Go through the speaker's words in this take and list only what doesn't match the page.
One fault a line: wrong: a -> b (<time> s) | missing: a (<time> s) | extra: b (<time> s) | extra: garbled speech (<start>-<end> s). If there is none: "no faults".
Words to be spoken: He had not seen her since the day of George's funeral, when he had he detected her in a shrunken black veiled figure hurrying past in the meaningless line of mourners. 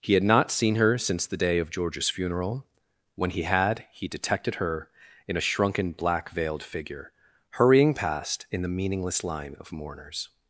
no faults